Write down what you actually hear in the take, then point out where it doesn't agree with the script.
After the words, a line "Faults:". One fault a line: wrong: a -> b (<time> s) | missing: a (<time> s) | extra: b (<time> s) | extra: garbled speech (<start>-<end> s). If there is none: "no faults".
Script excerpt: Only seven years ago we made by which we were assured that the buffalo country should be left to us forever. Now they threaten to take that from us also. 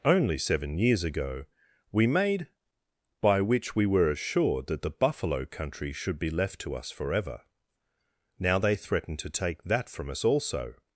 Only seven years ago we made by which we were assured that the buffalo country should be left to us forever. Now they threaten to take that from us also.
Faults:
no faults